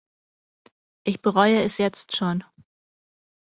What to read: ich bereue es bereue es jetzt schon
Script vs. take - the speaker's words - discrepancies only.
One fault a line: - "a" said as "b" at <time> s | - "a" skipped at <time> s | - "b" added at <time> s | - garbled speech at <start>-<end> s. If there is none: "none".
- "bereue es" skipped at 1.8 s